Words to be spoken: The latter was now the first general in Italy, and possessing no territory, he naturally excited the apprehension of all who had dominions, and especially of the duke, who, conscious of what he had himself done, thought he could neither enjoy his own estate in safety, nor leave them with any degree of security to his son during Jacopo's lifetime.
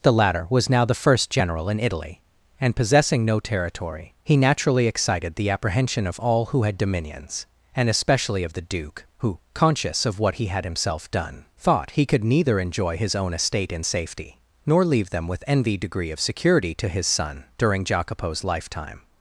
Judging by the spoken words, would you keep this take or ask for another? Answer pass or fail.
fail